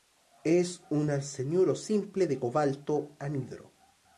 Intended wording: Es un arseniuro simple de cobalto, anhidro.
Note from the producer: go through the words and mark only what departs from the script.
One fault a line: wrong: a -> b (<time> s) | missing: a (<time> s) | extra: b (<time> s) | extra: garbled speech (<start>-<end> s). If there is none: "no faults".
no faults